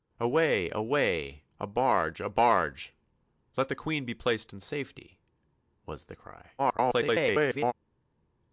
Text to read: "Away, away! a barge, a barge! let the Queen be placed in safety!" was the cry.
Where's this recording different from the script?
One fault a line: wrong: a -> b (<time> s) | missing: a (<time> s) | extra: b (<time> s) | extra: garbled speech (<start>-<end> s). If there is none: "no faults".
extra: garbled speech (6.6-7.7 s)